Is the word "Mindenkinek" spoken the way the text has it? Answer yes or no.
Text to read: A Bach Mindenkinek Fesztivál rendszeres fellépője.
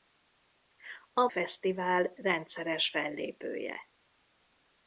no